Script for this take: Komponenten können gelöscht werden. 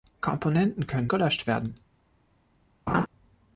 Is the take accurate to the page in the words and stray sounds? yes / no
no